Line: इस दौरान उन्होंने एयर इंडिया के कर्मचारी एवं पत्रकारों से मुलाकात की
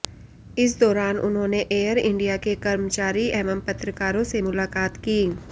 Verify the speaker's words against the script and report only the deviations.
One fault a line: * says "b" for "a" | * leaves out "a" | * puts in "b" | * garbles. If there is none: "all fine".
all fine